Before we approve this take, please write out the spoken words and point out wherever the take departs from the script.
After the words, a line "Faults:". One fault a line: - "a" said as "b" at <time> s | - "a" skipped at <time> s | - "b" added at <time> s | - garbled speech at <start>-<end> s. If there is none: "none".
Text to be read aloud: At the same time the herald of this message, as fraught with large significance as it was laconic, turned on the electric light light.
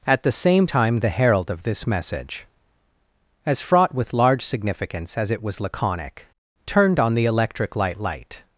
At the same time the herald of this message, as fraught with large significance as it was laconic, turned on the electric light light.
Faults:
none